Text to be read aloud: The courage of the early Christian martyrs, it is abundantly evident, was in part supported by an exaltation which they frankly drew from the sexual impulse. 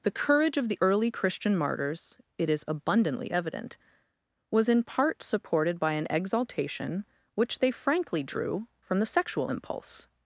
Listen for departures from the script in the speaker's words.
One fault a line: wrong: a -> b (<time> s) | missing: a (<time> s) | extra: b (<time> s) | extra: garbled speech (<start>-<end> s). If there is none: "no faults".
no faults